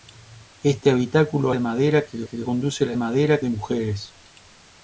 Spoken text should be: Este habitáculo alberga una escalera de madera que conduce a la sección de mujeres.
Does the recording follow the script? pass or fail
fail